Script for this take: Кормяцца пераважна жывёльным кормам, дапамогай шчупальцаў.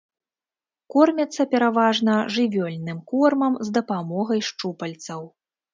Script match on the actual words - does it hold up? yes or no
no